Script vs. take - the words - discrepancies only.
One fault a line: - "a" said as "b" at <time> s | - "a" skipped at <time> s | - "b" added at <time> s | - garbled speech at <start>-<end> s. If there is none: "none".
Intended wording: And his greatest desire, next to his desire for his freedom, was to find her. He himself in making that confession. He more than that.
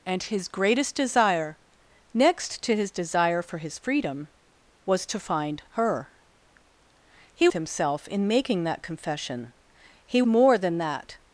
none